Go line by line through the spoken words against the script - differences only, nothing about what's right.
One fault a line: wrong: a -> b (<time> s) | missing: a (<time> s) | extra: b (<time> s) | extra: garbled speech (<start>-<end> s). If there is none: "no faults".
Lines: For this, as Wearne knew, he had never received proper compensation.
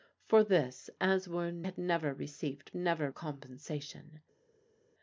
missing: knew he (1.7 s)
wrong: proper -> never (2.7 s)